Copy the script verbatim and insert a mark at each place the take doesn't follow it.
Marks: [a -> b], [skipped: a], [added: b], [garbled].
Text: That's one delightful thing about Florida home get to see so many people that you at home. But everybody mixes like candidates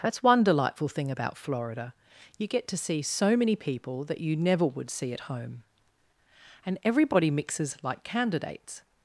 That's one delightful thing about Florida [home -> you] get to see so many people that you [added: never would see] at home. [But -> And] everybody mixes like candidates